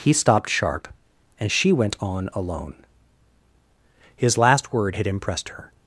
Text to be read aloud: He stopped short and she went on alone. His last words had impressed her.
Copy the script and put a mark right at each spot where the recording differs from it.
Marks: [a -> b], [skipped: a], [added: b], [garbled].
He stopped [short -> sharp] and she went on alone. His last [words -> word] had impressed her.